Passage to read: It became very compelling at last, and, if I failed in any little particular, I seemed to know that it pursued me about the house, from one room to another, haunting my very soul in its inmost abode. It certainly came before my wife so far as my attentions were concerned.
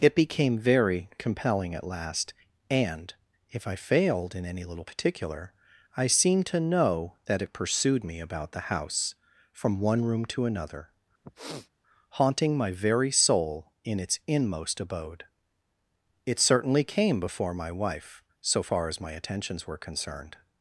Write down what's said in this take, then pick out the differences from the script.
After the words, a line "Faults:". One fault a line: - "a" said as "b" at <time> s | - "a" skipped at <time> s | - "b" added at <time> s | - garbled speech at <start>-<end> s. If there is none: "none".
It became very compelling at last, and, if I failed in any little particular, I seemed to know that it pursued me about the house, from one room to another, haunting my very soul in its inmost abode. It certainly came before my wife so far as my attentions were concerned.
Faults:
none